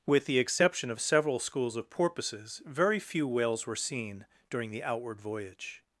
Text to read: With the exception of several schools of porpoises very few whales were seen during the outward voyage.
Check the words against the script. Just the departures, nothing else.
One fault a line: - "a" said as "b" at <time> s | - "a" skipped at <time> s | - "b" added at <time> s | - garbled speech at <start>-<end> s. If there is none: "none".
none